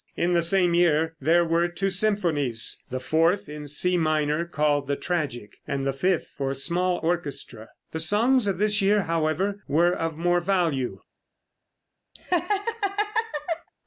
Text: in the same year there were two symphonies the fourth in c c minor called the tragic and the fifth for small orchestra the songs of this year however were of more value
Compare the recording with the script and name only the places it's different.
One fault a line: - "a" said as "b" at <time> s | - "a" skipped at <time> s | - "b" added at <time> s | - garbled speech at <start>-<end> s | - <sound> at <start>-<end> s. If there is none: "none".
- "c" skipped at 4.0 s
- laugh at 12.1-13.7 s